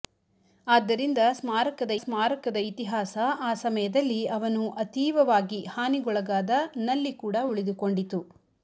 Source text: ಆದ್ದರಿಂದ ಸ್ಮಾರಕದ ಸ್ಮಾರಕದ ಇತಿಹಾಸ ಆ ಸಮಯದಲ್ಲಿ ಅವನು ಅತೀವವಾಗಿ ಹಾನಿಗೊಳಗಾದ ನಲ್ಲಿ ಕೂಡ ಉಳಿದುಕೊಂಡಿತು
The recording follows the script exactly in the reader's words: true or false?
true